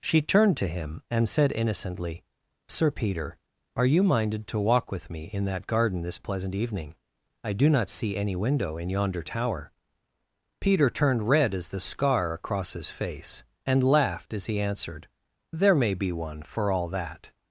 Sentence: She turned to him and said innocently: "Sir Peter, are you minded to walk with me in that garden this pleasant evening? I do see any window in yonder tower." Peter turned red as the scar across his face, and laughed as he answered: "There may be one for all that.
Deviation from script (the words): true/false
true